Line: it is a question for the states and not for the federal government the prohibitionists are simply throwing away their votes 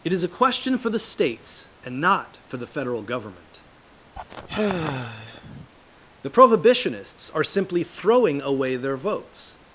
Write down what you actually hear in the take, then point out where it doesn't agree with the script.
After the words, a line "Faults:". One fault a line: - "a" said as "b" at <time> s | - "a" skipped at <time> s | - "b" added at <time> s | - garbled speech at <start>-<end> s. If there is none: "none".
it is a question for the states and not for the federal government the prohibitionists are simply throwing away their votes
Faults:
none